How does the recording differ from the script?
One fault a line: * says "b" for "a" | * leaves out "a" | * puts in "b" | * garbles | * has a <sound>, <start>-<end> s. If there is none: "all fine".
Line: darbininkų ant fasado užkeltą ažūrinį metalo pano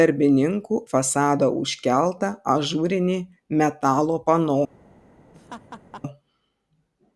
* leaves out "ant"
* has a laugh, 5.3-6.0 s